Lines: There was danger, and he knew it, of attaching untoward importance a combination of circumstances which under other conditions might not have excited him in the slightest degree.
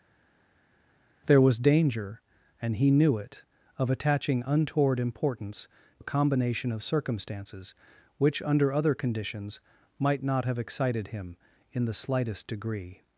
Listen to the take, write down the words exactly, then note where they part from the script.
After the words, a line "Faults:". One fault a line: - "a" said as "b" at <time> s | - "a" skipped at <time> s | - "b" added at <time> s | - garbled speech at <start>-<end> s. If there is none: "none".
There was danger, and he knew it, of attaching untoward importance a combination of circumstances which under other conditions might not have excited him in the slightest degree.
Faults:
none